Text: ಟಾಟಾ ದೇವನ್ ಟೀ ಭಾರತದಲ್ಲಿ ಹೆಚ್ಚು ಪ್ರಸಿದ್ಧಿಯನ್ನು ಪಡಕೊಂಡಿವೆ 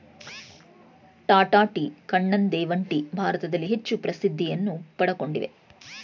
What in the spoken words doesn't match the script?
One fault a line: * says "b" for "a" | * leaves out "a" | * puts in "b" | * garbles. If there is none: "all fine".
* puts in "ಟೀ ಕಣ್ಣನ್"